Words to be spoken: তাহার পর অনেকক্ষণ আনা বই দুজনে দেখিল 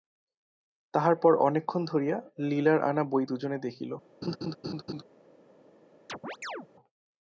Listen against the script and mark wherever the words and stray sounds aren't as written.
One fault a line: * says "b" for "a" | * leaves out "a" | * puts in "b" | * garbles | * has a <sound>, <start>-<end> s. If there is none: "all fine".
* puts in "ধরিয়া লীলার"
* has a laugh, 4.2-5.0 s
* has a chirp, 6.1-6.7 s